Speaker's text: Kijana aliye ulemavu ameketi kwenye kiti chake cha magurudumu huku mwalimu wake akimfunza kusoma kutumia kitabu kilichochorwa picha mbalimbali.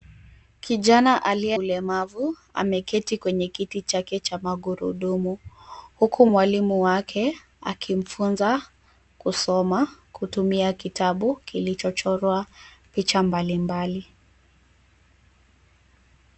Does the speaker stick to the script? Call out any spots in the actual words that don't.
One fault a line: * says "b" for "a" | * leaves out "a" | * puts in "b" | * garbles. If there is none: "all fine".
all fine